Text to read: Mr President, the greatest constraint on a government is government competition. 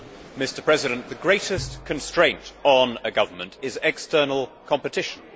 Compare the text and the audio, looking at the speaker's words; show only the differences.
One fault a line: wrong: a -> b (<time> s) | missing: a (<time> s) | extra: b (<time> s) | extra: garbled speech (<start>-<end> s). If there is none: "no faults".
wrong: government -> external (3.8 s)